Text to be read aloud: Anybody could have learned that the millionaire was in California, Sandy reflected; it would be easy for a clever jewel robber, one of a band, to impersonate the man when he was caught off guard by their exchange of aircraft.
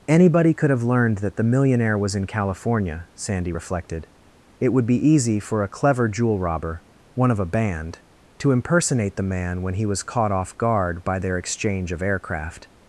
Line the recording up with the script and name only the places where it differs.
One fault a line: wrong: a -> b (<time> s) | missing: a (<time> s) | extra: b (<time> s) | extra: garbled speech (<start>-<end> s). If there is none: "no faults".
no faults